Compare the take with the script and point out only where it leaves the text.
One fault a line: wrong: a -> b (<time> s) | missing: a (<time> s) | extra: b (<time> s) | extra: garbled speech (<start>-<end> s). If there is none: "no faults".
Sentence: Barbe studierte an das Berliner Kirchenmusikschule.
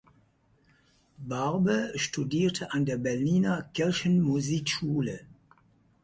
wrong: das -> der (2.9 s)